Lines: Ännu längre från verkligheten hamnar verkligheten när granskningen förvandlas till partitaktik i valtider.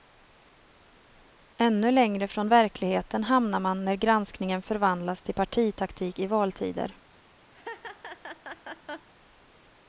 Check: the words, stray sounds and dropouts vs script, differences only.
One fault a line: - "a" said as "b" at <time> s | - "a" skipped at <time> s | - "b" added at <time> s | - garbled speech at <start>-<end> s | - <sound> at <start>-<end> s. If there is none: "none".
- "verkligheten" said as "man" at 3.6 s
- laugh at 7.5-9.1 s